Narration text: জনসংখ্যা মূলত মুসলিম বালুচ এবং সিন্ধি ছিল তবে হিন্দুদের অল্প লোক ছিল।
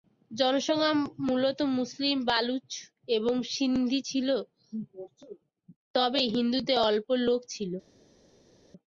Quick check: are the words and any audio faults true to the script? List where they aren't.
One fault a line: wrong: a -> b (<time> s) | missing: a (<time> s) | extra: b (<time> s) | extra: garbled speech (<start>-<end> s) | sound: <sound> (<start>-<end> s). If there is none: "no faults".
no faults